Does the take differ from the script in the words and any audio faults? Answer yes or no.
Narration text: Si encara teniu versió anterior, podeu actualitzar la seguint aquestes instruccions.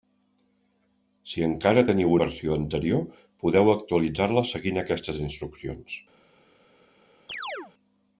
yes